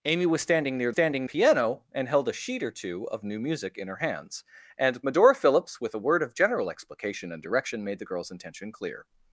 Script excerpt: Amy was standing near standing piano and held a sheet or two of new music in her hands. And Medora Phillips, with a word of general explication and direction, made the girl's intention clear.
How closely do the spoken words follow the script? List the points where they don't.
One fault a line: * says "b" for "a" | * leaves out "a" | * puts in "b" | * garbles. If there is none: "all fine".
all fine